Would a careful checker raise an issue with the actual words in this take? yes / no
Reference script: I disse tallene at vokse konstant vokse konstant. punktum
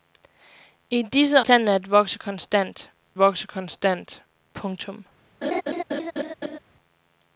no